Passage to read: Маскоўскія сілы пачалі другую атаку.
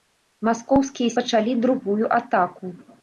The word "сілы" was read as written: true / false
false